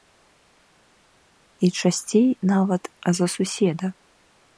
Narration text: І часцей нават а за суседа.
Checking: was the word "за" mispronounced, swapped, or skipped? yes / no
no